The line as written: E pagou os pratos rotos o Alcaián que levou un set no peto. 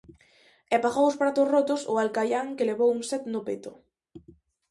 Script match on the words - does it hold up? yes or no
yes